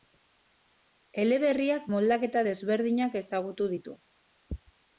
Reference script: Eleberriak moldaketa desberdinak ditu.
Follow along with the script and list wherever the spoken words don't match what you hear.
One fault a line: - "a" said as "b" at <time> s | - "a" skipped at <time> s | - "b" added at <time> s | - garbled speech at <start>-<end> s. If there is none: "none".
- "ezagutu" added at 3.2 s